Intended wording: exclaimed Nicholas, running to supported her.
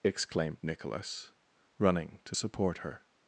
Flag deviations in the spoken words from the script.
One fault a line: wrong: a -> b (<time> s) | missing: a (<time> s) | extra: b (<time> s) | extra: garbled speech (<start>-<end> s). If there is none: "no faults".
wrong: supported -> support (2.3 s)